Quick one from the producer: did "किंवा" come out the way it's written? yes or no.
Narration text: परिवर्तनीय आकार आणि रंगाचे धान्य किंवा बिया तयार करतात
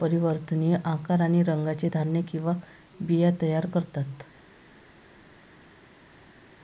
yes